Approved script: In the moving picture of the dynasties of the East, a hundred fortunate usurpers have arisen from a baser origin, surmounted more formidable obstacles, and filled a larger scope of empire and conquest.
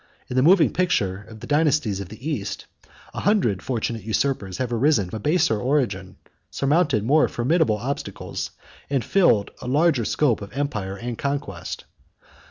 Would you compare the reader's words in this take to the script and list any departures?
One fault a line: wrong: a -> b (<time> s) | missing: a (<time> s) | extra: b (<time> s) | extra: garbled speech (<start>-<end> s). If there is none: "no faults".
missing: from (5.1 s)